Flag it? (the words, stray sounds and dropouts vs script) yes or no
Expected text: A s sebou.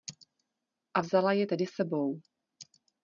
yes